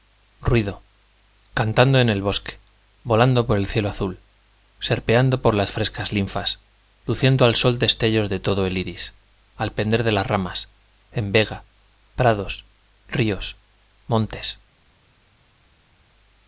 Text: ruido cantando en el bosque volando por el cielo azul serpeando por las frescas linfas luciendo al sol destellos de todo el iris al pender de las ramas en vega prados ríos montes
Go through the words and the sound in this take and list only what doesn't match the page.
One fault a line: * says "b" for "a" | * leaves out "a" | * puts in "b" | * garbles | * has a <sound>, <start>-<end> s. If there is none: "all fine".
all fine